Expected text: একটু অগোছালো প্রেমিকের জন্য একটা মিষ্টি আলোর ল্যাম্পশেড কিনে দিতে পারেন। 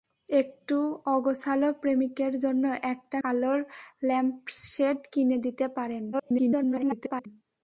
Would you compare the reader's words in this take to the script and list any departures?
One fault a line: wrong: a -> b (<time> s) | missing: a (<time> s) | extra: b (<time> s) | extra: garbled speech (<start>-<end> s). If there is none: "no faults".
missing: মিষ্টি (3.2 s)
extra: garbled speech (6.1-7.3 s)